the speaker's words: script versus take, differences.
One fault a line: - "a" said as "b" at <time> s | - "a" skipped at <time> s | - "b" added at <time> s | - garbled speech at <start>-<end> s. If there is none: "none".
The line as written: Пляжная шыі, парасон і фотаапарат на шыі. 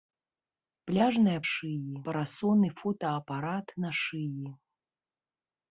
none